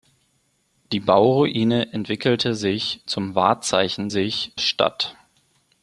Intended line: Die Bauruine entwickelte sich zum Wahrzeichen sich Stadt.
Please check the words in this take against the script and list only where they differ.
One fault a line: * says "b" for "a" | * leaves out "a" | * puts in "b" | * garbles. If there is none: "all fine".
all fine